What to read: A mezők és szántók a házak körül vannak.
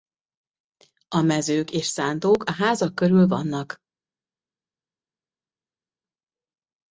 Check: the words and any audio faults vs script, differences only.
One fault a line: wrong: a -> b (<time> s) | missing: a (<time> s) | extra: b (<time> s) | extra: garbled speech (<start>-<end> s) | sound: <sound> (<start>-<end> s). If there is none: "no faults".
no faults